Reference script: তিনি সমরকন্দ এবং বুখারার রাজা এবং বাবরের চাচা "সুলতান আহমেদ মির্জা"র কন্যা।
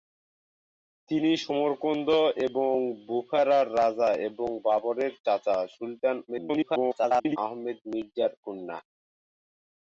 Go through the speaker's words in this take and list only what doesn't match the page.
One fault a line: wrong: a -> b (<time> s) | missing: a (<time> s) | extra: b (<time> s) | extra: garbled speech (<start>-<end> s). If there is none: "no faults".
extra: garbled speech (6.3-7.4 s)